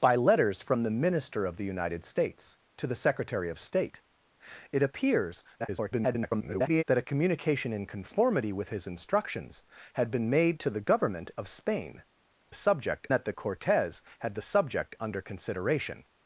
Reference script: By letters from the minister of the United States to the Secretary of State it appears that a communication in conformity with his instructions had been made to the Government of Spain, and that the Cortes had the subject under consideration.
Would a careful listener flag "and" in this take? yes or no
yes